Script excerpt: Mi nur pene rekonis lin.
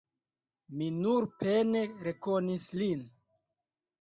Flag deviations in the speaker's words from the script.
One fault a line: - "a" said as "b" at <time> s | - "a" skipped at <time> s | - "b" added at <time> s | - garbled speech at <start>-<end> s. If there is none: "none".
none